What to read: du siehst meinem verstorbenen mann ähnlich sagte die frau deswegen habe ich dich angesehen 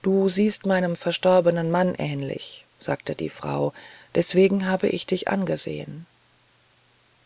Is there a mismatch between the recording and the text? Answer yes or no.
no